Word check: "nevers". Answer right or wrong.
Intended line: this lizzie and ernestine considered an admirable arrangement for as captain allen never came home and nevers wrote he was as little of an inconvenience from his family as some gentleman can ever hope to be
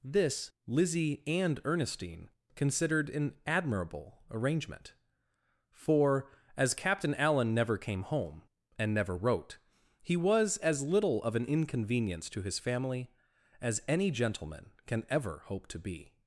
wrong